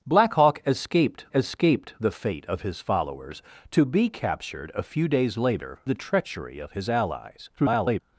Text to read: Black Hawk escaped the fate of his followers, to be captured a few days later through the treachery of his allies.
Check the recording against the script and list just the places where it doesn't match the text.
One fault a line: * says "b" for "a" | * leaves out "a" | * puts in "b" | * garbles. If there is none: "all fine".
* puts in "escaped"
* leaves out "through"
* garbles